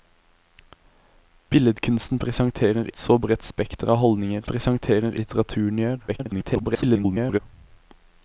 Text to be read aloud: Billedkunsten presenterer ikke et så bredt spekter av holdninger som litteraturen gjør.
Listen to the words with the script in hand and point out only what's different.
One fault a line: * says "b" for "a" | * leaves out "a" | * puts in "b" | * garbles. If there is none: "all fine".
* leaves out "ikke"
* says "presenterer" for "som"
* garbles